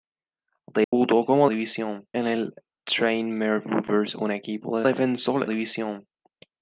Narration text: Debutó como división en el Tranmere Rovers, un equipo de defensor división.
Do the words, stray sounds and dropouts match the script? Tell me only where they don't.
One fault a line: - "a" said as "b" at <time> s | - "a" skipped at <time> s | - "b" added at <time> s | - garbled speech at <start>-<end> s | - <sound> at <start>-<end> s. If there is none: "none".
- dropout at 0.8-0.9 s